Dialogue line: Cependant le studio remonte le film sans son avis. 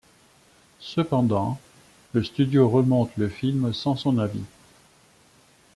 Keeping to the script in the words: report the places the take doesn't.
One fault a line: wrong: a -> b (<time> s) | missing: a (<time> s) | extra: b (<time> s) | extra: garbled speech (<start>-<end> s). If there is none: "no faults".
no faults